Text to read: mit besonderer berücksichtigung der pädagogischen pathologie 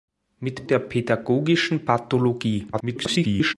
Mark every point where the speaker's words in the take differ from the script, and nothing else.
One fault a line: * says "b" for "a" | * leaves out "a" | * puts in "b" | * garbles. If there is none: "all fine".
* leaves out "besonderer berücksichtigung"
* garbles